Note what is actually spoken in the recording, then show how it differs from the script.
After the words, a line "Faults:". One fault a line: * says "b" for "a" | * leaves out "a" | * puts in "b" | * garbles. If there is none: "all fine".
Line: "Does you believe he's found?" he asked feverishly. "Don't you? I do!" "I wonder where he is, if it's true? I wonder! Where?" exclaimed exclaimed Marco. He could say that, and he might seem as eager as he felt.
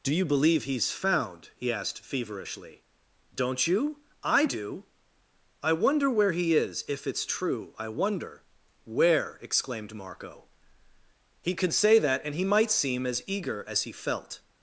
"Do you believe he's found?" he asked feverishly. "Don't you? I do!" "I wonder where he is, if it's true? I wonder! Where?" exclaimed Marco. He could say that, and he might seem as eager as he felt.
Faults:
* says "Do" for "Does"
* leaves out "exclaimed"